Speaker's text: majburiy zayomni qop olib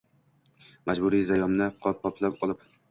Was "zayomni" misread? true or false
false